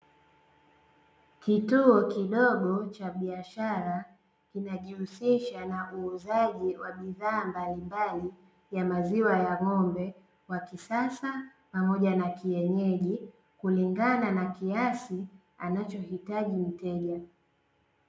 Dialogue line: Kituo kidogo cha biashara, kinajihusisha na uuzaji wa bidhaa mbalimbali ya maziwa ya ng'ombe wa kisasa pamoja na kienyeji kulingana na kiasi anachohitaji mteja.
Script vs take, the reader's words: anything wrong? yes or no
no